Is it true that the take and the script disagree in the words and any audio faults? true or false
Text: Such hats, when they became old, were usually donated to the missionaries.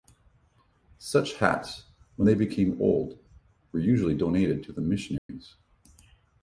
true